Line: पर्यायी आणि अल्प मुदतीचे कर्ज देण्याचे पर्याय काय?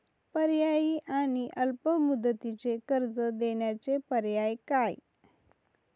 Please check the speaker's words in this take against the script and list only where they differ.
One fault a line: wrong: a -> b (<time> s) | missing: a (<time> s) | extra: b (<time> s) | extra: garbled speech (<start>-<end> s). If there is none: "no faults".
no faults